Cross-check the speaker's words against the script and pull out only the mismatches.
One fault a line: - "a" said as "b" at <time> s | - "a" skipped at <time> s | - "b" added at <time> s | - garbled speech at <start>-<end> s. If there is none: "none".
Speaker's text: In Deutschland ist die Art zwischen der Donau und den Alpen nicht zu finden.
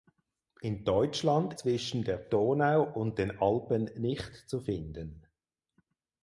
- "ist die Art" skipped at 1.6 s